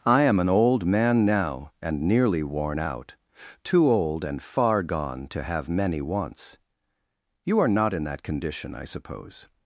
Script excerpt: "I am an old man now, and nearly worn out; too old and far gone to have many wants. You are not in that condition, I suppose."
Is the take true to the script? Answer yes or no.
yes